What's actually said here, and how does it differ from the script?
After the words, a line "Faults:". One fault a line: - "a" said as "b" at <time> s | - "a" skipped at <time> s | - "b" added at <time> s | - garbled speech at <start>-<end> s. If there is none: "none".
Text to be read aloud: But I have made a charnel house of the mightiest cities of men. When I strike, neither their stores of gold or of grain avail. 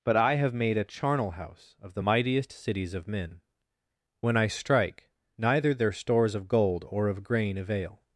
But I have made a charnel house of the mightiest cities of men. When I strike, neither their stores of gold or of grain avail.
Faults:
none